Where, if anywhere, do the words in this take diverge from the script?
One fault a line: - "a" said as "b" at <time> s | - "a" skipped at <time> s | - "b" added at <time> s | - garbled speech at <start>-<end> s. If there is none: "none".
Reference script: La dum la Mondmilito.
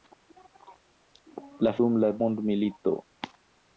none